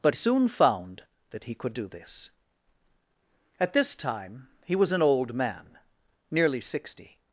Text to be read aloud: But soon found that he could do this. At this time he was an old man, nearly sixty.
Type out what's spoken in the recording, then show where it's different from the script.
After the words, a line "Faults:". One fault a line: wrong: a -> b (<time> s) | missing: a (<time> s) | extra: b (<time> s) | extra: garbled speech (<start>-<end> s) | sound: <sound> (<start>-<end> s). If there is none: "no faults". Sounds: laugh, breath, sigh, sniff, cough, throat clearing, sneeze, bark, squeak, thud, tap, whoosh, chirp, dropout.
But soon found that he could do this. At this time he was an old man, nearly sixty.
Faults:
no faults